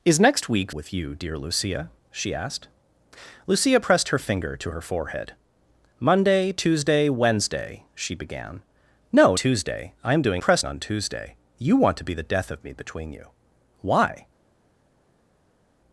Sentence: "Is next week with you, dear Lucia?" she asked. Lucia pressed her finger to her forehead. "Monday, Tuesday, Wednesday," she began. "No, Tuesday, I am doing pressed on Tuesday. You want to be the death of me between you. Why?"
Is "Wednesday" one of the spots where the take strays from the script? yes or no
no